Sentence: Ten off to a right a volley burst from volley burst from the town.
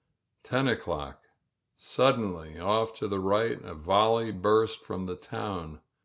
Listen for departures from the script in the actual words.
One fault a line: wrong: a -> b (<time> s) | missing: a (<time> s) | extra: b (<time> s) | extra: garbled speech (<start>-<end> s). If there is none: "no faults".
extra: o'clock Suddenly (0.7 s)
wrong: a -> the (3.1 s)
missing: volley burst from (5.0 s)